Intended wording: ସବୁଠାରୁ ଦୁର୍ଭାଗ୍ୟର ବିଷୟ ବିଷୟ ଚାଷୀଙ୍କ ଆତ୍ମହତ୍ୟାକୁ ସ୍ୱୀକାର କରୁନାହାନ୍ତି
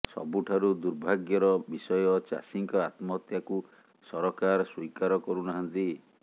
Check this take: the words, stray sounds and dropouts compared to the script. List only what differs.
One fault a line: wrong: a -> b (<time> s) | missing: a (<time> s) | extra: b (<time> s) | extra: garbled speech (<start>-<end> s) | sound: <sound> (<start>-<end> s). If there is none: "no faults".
missing: ବିଷୟ (2.0 s)
extra: ସରକାର (4.1 s)